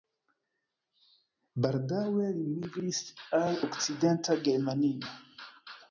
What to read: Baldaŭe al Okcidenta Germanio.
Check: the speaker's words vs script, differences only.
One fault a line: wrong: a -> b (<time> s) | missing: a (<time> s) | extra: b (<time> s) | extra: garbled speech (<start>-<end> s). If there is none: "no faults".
extra: li migris (2.4 s)